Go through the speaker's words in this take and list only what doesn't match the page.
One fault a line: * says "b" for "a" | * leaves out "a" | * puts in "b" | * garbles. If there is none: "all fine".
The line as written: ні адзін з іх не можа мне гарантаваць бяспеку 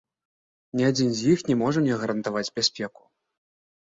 all fine